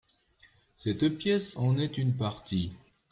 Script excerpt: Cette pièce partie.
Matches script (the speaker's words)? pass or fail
fail